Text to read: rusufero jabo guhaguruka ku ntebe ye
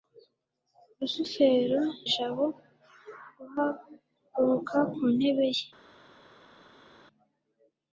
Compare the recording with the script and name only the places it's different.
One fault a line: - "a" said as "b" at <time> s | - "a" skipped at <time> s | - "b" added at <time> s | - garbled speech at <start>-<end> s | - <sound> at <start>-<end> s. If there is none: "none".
none